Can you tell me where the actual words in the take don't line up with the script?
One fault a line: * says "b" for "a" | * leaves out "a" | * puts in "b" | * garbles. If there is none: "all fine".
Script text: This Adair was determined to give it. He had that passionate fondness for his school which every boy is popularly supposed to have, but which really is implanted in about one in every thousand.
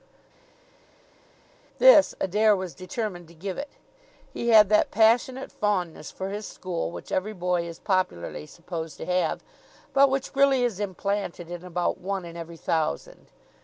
all fine